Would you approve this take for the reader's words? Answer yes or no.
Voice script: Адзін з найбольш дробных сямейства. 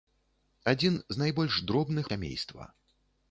yes